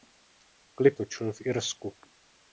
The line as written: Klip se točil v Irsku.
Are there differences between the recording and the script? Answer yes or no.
yes